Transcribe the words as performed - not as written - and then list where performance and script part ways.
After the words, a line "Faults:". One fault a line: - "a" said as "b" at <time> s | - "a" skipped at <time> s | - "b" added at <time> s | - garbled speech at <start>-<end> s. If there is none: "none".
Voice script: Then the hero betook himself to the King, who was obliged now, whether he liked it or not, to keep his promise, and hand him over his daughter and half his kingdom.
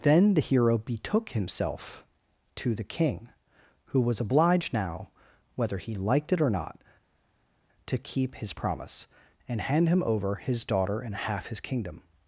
Then the hero betook himself to the King, who was obliged now, whether he liked it or not, to keep his promise, and hand him over his daughter and half his kingdom.
Faults:
none